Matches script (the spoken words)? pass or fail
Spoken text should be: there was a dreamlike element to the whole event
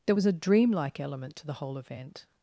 pass